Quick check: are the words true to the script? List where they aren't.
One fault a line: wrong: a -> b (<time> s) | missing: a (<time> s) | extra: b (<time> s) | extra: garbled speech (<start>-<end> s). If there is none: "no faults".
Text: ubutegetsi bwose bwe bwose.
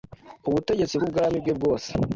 wrong: bwose -> bw'ubwami (1.0 s)